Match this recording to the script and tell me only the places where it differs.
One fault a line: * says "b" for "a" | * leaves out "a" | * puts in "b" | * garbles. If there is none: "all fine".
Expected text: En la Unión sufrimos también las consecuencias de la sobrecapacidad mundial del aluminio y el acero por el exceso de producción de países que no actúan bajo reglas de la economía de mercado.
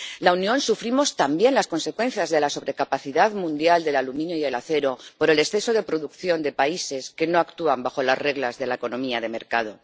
* puts in "las"